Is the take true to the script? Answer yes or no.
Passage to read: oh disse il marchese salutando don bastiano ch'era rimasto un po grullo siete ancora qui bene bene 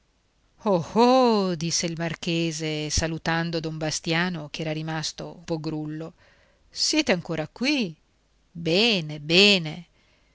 no